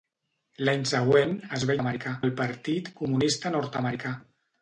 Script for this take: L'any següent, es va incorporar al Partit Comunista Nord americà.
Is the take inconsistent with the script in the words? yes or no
yes